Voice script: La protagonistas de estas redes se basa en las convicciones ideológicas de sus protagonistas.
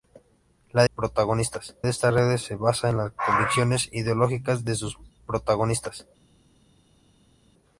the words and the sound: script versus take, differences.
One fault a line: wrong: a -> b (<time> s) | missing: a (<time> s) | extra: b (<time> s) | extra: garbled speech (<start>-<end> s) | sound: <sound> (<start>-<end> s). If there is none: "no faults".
no faults